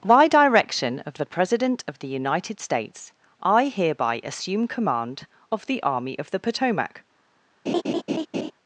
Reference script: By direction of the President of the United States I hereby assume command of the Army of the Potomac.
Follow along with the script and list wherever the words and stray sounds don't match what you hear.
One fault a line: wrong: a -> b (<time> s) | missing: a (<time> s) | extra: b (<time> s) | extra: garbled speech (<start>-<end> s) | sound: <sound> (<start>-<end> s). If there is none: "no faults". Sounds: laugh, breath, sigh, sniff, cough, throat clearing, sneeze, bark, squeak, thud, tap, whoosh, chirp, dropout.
sound: laugh (7.7-8.5 s)